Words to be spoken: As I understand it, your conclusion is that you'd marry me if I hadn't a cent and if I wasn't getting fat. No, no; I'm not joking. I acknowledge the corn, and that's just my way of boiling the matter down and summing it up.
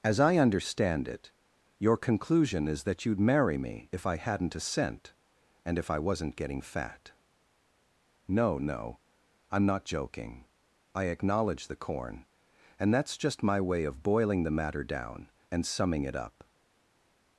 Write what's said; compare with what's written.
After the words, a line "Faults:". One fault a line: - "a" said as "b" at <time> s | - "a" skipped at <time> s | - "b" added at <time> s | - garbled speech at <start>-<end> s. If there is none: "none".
As I understand it, your conclusion is that you'd marry me if I hadn't a cent and if I wasn't getting fat. No, no; I'm not joking. I acknowledge the corn, and that's just my way of boiling the matter down and summing it up.
Faults:
none